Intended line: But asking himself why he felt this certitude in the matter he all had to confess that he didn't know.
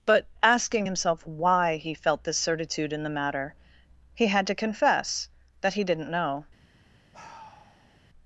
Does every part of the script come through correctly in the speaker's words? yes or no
no